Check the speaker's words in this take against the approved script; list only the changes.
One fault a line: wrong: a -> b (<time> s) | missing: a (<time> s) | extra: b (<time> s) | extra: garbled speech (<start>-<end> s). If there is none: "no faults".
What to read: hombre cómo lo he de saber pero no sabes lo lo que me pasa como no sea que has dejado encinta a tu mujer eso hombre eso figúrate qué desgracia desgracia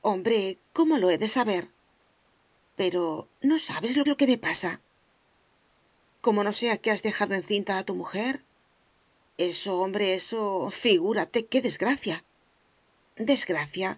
no faults